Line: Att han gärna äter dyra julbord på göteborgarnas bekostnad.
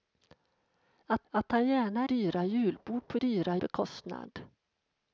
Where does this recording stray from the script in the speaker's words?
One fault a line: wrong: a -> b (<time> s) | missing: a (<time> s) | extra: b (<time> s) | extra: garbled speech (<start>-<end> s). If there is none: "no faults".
extra: att (1.3 s)
missing: äter (2.1 s)
wrong: göteborgarnas -> dyra (3.1 s)